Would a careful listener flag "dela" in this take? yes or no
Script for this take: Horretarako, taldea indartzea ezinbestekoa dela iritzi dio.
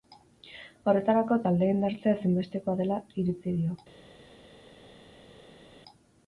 no